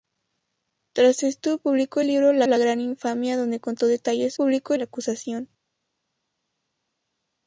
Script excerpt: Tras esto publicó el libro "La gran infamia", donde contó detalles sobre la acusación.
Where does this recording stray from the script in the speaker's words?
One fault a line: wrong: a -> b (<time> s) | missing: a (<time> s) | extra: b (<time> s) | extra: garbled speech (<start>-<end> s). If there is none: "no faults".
extra: la (2.4 s)
wrong: sobre -> publicó (4.3 s)